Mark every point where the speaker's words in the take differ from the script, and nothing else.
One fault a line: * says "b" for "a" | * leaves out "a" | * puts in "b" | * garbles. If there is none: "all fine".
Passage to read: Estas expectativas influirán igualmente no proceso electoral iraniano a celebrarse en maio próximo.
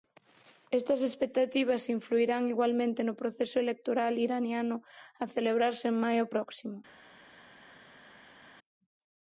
all fine